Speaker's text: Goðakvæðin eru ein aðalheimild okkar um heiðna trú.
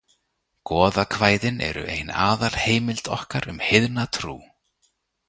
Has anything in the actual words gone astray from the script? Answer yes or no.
no